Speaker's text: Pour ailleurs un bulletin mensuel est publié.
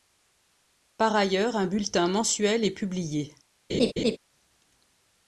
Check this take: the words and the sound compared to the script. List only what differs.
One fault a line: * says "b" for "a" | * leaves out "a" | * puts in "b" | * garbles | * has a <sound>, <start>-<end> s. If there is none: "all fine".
* says "Par" for "Pour"
* has a laugh, 3.7-4.2 s